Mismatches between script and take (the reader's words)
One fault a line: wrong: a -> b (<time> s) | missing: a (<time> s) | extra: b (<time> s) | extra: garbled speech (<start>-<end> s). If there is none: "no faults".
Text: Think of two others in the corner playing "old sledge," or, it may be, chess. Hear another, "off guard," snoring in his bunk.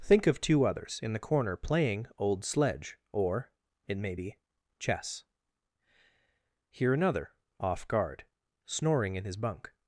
no faults